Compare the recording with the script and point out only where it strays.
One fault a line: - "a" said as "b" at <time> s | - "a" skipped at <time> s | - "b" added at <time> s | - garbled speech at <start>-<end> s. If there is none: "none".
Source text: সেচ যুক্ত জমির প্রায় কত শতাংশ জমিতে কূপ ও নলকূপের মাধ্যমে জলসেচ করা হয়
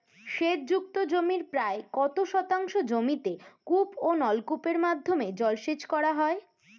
none